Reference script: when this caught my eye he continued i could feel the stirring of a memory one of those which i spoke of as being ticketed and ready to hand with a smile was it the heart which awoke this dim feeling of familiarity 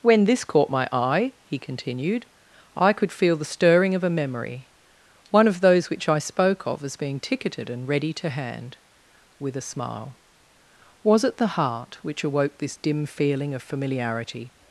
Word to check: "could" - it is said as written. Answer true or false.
true